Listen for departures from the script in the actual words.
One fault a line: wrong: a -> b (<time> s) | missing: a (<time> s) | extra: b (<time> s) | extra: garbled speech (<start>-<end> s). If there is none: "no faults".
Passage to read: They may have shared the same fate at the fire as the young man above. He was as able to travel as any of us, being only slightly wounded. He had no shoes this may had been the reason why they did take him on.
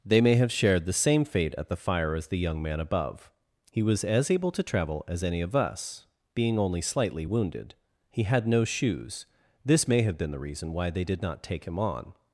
wrong: had -> have (10.0 s)
extra: not (11.2 s)